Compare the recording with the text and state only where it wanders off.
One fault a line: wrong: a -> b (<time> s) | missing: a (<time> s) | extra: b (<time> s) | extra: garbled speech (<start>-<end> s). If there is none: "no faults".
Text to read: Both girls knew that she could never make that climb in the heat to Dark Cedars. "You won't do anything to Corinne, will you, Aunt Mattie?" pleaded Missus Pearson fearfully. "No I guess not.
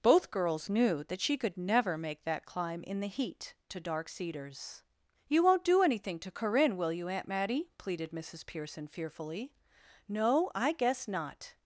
no faults